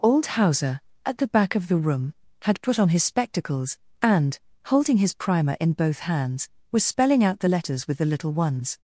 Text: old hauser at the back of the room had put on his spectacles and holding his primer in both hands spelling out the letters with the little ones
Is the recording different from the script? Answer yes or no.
yes